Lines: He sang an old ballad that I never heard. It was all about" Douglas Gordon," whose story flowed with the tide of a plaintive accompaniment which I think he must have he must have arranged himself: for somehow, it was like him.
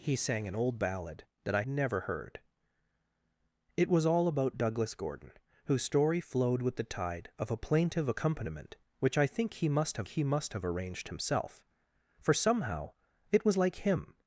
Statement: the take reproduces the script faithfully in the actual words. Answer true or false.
true